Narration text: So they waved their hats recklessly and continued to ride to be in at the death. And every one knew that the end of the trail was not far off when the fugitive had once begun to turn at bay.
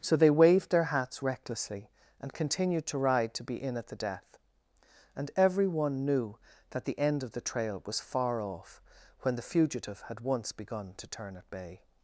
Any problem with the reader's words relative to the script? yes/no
yes